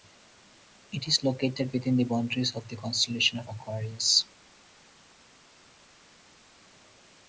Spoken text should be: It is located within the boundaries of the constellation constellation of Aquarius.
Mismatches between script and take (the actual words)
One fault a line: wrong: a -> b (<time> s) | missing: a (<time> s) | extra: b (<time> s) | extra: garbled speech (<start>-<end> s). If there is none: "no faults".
missing: constellation (3.4 s)